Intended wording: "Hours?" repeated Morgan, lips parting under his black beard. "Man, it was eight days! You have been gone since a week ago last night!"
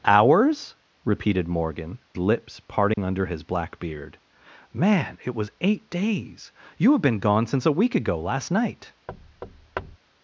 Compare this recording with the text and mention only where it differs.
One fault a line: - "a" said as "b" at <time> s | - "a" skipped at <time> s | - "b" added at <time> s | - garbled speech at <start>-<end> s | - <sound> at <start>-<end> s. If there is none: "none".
- dropout at 2.9-3.0 s
- thud at 9.1-10.0 s